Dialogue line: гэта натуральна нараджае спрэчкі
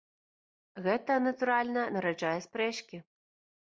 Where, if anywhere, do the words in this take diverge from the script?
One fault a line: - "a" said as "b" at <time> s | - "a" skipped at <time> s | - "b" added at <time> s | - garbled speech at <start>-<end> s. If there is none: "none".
none